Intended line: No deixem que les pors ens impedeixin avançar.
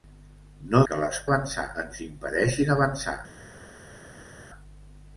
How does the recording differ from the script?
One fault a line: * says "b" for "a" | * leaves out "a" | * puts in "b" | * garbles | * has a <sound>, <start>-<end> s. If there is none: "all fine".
* leaves out "deixem"
* says "avançar" for "pors"